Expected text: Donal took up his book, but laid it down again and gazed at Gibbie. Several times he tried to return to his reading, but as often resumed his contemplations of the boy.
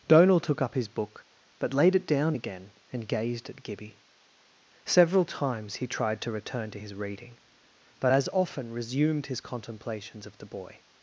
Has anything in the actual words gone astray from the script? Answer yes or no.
no